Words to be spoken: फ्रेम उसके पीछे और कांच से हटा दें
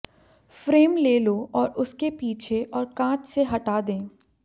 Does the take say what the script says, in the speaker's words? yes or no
no